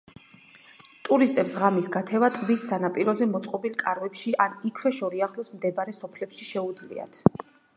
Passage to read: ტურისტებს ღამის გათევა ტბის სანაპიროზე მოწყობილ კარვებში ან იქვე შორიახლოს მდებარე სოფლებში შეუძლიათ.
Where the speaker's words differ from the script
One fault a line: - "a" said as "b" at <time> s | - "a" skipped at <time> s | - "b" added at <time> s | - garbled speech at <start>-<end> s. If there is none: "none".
none